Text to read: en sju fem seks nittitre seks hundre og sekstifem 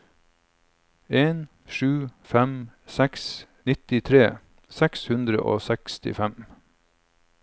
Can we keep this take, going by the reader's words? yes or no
yes